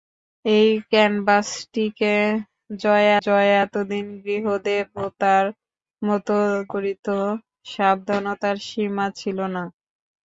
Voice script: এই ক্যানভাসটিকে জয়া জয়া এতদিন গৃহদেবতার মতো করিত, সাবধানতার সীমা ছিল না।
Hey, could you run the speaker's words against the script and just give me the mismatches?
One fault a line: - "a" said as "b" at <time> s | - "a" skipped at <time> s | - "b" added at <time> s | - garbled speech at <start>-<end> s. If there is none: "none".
none